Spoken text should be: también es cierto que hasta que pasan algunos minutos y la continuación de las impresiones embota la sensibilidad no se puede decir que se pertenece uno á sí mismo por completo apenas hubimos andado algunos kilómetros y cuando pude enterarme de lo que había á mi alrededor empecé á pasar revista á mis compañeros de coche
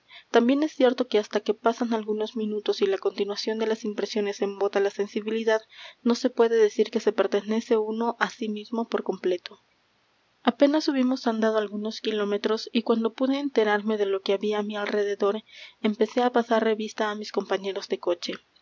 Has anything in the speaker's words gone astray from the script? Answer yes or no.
no